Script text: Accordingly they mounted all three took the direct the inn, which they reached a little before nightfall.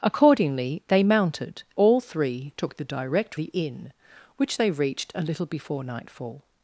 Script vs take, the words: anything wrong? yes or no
no